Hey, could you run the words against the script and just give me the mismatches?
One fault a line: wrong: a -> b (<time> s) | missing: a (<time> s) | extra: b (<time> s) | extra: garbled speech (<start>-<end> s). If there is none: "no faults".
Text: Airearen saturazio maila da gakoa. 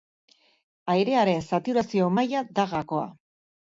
no faults